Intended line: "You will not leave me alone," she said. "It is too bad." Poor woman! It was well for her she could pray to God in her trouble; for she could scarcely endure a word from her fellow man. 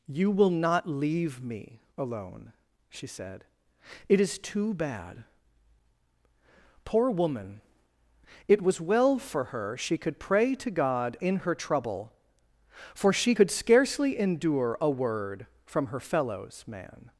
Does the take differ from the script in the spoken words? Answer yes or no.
yes